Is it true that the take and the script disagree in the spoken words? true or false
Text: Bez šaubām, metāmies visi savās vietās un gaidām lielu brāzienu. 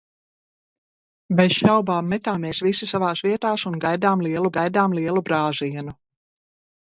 true